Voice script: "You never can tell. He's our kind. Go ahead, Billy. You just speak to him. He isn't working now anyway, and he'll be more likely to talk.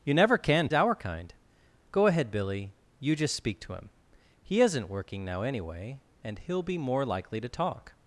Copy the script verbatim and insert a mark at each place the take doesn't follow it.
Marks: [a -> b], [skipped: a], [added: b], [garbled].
"You never can [skipped: tell. He's] our kind. Go ahead, Billy. You just speak to him. He isn't working now anyway, and he'll be more likely to talk.